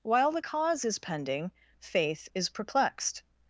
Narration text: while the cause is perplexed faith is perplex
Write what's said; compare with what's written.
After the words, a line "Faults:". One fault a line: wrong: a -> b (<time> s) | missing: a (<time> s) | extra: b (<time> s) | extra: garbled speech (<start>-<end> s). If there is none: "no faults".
while the cause is pending faith is perplexed
Faults:
wrong: perplexed -> pending (1.0 s)
wrong: perplex -> perplexed (2.5 s)